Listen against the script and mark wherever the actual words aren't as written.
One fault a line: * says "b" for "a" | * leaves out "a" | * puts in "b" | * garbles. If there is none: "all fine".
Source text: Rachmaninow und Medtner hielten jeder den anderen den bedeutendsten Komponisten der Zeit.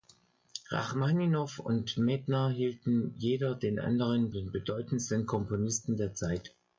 all fine